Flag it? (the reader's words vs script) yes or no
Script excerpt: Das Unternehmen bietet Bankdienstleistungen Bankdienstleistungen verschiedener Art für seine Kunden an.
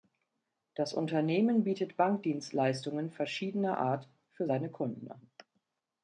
yes